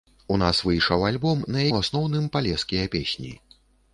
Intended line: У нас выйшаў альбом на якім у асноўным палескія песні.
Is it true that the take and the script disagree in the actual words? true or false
true